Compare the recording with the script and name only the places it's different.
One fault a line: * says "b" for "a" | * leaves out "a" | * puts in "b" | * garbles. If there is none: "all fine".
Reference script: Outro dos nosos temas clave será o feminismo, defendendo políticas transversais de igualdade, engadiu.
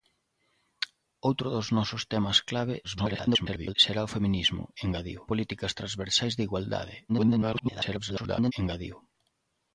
* garbles
* says "engadiu" for "defendendo"
* garbles